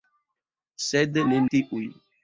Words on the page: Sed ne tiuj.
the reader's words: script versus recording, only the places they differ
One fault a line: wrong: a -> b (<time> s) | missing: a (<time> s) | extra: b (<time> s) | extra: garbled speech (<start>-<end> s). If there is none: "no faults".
no faults